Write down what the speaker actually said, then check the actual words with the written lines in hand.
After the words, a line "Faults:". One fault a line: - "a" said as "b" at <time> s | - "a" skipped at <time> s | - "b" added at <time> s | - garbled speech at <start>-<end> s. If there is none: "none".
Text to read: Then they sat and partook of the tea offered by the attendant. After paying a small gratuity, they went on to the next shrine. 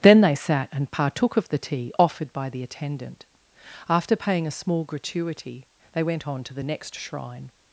Then they sat and partook of the tea offered by the attendant. After paying a small gratuity, they went on to the next shrine.
Faults:
none